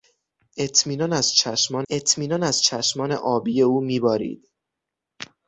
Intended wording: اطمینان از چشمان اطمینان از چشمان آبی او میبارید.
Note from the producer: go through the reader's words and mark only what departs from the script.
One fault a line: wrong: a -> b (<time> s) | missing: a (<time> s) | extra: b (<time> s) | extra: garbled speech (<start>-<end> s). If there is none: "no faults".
no faults